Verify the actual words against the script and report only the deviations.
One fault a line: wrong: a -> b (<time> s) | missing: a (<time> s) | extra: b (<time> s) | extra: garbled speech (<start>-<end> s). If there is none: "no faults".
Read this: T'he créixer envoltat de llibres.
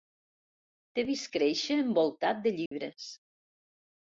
extra: vist (1.1 s)